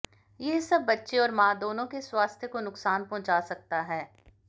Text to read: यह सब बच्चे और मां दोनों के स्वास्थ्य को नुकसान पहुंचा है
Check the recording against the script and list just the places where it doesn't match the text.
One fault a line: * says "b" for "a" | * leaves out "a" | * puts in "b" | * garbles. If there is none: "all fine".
* puts in "सकता"